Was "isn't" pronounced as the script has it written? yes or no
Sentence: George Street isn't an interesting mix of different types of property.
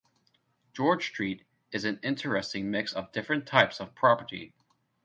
no